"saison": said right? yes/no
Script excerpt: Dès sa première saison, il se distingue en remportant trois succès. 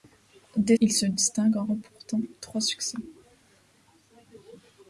no